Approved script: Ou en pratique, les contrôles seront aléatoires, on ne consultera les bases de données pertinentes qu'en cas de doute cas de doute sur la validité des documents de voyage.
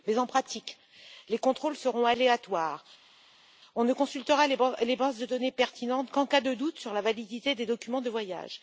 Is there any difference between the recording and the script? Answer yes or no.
yes